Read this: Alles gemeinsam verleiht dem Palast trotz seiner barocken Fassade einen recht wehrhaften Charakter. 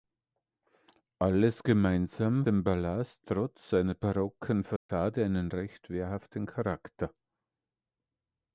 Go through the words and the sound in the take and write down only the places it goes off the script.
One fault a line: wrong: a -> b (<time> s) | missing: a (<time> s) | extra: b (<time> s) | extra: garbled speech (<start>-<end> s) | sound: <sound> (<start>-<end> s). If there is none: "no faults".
missing: verleiht (2.5 s)
sound: dropout (4.8-4.9 s)